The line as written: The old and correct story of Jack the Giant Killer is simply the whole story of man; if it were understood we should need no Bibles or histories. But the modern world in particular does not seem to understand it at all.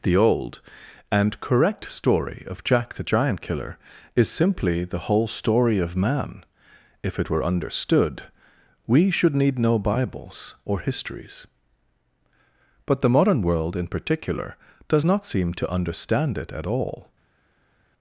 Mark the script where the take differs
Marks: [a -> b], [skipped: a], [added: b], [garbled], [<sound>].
The old and correct story of Jack the Giant Killer is simply the whole story of man; if it were understood we should need no Bibles or histories. But the modern world in particular does not seem to understand it at all.